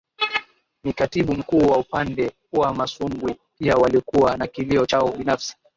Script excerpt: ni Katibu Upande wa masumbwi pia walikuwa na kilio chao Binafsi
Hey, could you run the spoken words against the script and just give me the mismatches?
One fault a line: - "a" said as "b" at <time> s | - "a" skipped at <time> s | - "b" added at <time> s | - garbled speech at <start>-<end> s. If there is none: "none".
- "Mkuu wa" added at 1.3 s